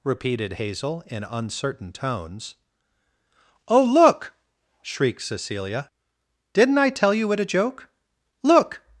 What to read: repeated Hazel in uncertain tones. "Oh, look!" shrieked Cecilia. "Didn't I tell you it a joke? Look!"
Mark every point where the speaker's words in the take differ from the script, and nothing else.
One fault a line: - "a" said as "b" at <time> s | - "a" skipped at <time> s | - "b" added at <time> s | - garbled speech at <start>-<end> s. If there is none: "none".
none